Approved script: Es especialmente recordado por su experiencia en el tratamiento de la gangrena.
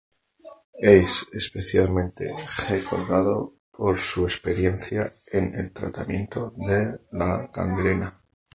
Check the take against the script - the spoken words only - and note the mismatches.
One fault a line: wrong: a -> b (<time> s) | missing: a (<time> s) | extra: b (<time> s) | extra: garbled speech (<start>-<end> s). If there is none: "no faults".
no faults